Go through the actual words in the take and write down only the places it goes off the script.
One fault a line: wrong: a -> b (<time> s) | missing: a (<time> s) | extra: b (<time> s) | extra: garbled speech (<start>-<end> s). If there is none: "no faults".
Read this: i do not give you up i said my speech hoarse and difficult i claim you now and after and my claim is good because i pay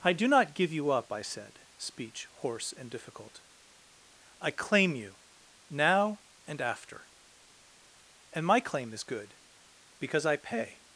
missing: my (1.6 s)